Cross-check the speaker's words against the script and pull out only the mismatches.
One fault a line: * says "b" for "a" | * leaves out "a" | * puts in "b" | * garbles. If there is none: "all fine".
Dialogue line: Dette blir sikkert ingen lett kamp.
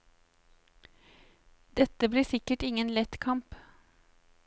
all fine